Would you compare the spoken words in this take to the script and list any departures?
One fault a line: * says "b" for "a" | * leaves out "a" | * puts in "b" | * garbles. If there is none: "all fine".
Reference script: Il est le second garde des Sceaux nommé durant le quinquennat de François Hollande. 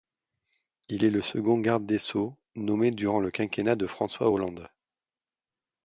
all fine